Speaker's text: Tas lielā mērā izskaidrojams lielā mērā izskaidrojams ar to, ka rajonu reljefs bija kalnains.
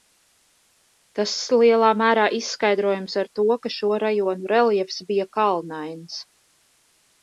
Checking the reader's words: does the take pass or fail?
fail